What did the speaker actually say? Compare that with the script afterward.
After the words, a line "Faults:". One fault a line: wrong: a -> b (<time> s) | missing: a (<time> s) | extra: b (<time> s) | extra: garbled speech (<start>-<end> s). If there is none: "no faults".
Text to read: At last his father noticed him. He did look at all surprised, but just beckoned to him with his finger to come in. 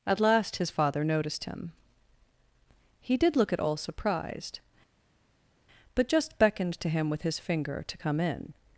At last his father noticed him. He did look at all surprised, but just beckoned to him with his finger to come in.
Faults:
no faults